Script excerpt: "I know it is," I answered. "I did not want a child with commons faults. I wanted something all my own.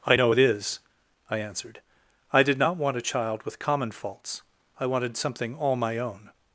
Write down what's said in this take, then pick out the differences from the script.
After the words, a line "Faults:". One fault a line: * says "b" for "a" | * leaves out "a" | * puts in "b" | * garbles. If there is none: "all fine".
"I know it is," I answered. "I did not want a child with common faults. I wanted something all my own.
Faults:
* says "common" for "commons"